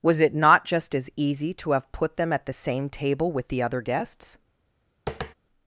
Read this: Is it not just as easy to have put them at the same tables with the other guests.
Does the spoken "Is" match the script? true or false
false